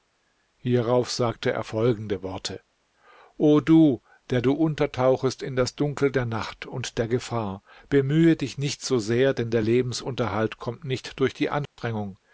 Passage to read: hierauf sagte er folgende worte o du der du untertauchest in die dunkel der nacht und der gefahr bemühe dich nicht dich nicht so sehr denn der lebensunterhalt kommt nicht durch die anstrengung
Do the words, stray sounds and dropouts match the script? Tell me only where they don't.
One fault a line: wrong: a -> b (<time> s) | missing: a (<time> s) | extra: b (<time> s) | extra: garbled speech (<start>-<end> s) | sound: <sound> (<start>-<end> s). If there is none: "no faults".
wrong: die -> das (5.5 s)
missing: dich nicht (8.8 s)
sound: dropout (11.7-11.8 s)